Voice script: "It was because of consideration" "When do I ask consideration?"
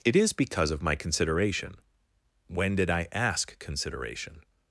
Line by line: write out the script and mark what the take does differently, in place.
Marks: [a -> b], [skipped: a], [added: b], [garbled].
"It [was -> is] because of [added: my] consideration" "When [do -> did] I ask consideration?"